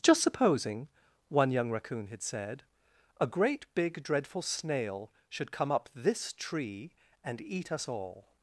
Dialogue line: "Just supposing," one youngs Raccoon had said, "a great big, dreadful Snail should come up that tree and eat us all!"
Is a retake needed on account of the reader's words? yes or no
yes